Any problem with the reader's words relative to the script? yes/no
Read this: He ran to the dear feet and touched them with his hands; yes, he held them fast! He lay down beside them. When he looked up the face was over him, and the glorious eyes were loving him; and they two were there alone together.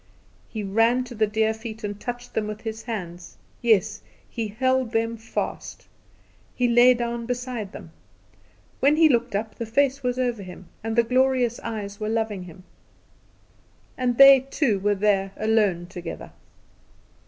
no